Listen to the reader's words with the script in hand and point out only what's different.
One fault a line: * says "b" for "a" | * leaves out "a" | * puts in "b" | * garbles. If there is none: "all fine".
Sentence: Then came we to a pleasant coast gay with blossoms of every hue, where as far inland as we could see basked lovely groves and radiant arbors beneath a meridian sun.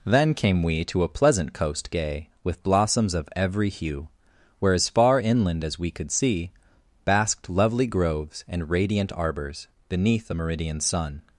all fine